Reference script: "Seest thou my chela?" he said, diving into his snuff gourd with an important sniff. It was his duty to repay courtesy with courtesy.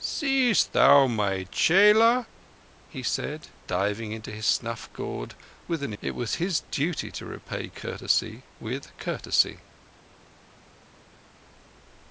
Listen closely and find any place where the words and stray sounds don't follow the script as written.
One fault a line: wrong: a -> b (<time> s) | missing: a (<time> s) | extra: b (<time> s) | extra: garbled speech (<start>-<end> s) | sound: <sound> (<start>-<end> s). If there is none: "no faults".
missing: important sniff (5.9 s)